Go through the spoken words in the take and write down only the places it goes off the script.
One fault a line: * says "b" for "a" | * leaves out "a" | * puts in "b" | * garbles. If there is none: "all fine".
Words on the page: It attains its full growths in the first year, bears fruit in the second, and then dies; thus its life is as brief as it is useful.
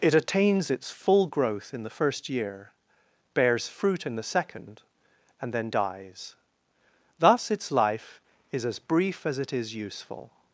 * says "growth" for "growths"